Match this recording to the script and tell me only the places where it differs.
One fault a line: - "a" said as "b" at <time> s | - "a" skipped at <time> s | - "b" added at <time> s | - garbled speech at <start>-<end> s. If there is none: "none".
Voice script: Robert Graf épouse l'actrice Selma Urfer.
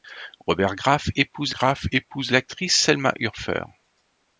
- "Graf épouse" added at 1.5 s